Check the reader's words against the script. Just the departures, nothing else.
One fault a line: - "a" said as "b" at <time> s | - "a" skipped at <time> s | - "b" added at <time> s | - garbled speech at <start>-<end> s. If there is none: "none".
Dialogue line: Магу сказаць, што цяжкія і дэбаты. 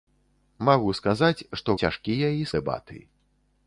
none